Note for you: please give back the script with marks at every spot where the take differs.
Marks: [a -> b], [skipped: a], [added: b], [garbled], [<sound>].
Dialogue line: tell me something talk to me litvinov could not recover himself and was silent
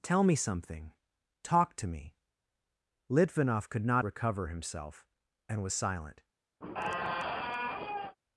tell me something talk to me litvinov could not recover himself and was silent [squeak]